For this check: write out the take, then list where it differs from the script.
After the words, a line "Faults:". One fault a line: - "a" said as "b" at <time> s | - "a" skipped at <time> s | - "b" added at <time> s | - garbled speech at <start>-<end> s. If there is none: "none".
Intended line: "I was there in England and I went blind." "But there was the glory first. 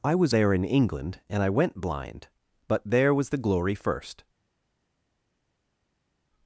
"I was there in England and I went blind." "But there was the glory first.
Faults:
none